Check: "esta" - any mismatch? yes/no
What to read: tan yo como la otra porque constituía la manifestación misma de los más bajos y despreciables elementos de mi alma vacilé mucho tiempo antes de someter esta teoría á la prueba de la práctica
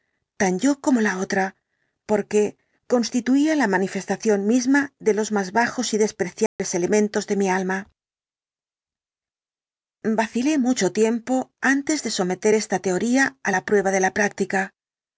no